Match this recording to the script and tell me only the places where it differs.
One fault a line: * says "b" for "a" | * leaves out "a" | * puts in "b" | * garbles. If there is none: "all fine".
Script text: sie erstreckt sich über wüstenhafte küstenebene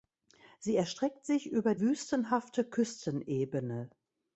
all fine